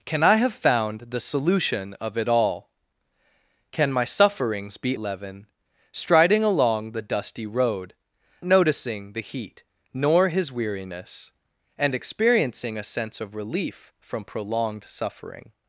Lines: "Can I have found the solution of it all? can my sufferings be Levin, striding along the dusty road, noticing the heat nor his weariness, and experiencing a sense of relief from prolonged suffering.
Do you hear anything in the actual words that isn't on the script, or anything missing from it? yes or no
no